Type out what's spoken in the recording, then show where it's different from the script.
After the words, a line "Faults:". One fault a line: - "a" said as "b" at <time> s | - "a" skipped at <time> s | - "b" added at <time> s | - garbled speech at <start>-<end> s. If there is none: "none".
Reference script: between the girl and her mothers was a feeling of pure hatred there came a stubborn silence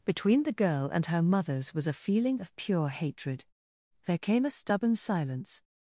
between the girl and her mothers was a feeling of pure hatred there came a stubborn silence
Faults:
none